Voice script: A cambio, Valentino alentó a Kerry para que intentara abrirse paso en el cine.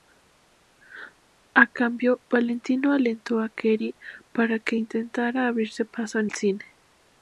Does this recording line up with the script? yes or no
no